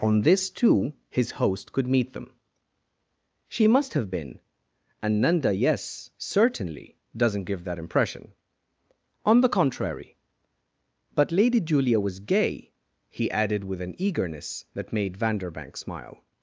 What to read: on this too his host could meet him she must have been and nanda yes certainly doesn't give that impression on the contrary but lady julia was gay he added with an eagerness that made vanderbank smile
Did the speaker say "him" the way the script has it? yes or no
no